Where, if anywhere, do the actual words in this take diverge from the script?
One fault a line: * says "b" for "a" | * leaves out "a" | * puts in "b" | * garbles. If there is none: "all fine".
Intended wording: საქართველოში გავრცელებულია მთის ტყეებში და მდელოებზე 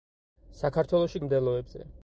* leaves out "გავრცელებულია მთის ტყეებში"